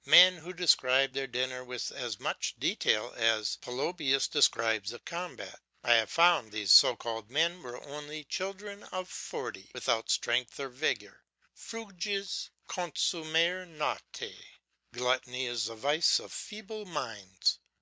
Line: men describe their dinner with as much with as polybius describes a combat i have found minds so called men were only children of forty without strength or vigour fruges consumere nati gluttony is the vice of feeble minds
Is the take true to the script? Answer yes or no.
no